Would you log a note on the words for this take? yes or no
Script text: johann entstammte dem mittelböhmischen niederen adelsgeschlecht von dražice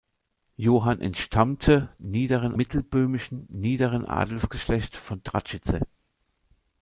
yes